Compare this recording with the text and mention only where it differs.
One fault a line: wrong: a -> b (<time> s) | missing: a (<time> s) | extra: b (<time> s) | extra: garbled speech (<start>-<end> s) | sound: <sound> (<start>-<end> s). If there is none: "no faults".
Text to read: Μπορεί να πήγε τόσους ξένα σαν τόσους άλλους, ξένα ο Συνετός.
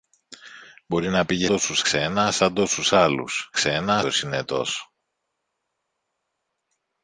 no faults